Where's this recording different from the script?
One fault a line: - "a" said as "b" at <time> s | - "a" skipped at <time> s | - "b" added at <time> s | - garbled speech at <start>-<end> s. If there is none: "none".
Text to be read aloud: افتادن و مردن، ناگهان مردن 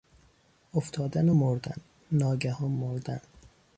none